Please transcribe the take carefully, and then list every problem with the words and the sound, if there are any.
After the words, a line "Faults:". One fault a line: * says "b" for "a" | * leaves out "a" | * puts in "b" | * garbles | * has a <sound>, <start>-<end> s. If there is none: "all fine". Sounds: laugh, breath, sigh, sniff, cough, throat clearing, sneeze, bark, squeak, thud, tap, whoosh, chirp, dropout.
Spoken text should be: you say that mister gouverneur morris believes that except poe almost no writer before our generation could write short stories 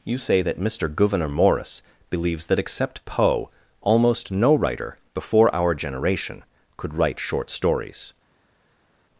you say that mister gouverneur morris believes that except poe almost no writer before our generation could write short stories
Faults:
all fine